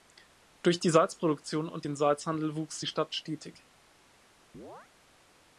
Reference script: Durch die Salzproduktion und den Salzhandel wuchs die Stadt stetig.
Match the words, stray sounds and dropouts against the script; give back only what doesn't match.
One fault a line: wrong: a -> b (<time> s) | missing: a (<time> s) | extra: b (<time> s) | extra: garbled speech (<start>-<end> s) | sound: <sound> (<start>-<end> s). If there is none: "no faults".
sound: chirp (4.5-4.9 s)